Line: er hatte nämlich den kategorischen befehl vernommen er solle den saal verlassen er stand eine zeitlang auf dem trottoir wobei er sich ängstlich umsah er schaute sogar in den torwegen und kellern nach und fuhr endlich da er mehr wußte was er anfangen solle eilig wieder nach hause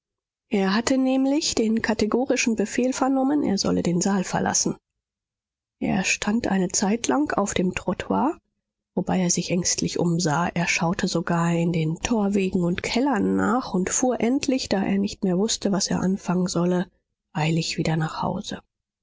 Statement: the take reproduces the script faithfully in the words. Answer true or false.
false